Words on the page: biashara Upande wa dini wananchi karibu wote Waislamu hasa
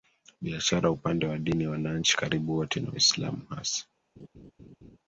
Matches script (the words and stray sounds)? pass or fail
fail